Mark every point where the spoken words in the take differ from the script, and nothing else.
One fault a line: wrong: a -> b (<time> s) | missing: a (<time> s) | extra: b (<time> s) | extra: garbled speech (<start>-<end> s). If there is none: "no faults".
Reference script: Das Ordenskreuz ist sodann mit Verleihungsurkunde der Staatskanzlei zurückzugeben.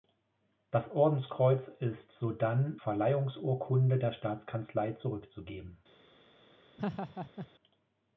missing: mit (2.8 s)